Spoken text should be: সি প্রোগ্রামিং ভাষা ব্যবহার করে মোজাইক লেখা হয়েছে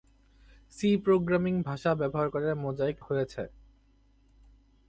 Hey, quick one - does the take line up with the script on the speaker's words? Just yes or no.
no